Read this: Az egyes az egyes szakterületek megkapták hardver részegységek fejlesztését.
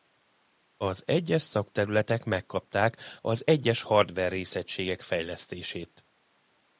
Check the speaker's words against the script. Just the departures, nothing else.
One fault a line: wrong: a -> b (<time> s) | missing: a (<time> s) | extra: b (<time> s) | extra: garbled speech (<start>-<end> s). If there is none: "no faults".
extra: szakterületek megkapták (1.4 s)
missing: szakterületek megkapták (3.8 s)